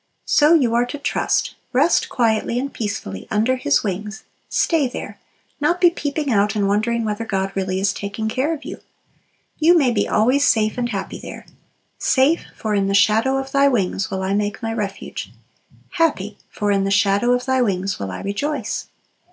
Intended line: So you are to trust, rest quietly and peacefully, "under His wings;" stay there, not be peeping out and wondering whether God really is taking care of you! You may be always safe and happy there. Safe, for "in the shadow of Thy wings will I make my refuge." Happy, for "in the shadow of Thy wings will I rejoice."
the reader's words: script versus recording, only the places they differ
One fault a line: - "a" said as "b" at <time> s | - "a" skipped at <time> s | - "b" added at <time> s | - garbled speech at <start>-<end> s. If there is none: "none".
none